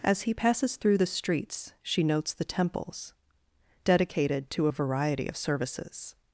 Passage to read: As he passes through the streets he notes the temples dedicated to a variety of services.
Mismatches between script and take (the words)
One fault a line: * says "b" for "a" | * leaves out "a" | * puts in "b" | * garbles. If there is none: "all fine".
* says "she" for "he"